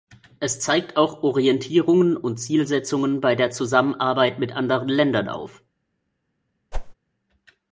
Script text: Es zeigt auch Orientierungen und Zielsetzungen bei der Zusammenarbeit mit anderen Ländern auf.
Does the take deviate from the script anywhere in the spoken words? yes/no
no